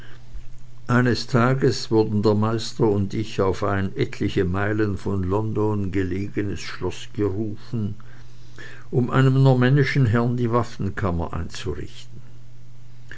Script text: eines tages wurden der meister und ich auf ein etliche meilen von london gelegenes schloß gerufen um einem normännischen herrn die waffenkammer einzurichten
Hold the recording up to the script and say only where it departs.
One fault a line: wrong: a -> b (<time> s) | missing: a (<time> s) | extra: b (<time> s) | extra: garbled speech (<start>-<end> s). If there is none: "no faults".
no faults